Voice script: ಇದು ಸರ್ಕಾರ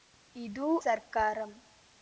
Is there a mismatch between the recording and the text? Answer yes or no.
no